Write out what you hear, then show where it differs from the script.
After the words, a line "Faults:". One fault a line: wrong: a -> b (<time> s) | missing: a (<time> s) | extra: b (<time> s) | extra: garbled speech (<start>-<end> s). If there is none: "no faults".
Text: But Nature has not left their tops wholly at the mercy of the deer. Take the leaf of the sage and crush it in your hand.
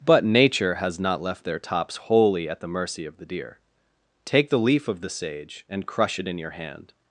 But Nature has not left their tops wholly at the mercy of the deer. Take the leaf of the sage and crush it in your hand.
Faults:
no faults